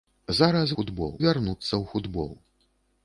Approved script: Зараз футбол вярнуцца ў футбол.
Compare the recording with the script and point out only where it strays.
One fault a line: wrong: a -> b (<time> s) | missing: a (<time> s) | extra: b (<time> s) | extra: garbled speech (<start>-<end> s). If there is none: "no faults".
no faults